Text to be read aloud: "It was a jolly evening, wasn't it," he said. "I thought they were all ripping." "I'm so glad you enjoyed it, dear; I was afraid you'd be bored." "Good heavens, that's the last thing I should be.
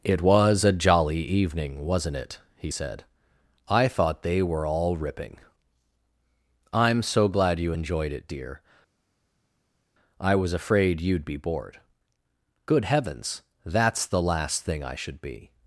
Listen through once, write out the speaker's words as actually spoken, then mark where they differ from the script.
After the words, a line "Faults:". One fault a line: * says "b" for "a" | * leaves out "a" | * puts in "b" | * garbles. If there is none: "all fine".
"It was a jolly evening, wasn't it," he said. "I thought they were all ripping." "I'm so glad you enjoyed it, dear; I was afraid you'd be bored." "Good heavens, that's the last thing I should be.
Faults:
all fine